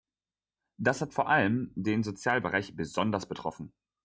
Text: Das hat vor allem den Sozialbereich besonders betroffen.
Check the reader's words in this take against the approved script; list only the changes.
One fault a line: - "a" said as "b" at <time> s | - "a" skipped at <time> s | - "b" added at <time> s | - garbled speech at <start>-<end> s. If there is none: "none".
none